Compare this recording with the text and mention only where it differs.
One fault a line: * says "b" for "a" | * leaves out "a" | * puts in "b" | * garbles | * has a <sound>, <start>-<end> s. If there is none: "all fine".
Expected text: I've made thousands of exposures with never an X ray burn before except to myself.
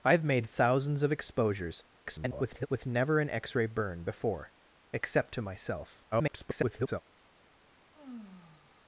* garbles
* garbles
* has a sigh, 7.9-8.8 s